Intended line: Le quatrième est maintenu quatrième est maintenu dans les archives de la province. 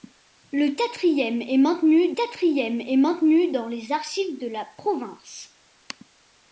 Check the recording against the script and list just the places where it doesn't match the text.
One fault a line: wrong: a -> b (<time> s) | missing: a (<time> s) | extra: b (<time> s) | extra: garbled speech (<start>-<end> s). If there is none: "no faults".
no faults